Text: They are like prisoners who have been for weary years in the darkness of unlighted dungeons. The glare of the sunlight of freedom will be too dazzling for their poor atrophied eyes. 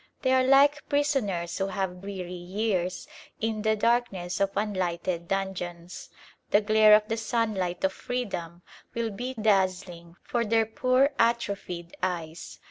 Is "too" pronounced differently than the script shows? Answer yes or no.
yes